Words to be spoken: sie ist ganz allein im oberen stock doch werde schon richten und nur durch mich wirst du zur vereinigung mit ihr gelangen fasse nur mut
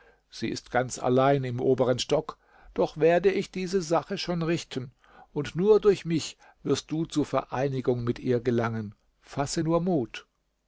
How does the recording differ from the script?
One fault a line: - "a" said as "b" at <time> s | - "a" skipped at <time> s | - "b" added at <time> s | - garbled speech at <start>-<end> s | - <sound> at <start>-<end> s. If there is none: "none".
- "ich diese sache" added at 3.3 s